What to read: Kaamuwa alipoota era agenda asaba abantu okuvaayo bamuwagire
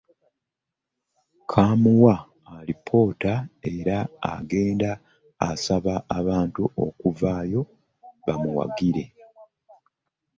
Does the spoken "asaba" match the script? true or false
true